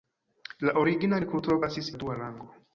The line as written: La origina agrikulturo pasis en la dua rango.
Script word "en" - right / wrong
wrong